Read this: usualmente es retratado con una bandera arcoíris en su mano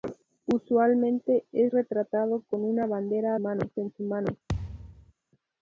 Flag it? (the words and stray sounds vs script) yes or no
yes